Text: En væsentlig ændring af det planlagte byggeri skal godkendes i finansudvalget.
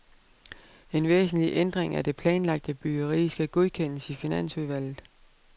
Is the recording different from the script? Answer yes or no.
no